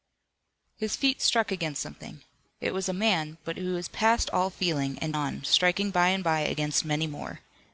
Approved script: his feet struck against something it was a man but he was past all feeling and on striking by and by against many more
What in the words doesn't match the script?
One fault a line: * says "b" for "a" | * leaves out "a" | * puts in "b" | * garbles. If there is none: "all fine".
all fine